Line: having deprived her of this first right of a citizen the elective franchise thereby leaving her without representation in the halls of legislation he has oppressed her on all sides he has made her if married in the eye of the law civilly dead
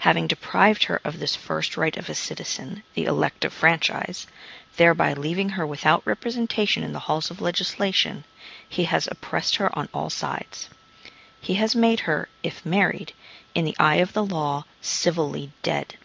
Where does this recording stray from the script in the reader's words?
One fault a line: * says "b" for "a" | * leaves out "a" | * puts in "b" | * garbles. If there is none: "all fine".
all fine